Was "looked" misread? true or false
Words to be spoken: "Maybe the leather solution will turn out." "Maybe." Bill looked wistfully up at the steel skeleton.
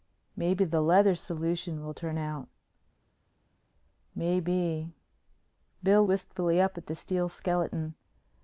true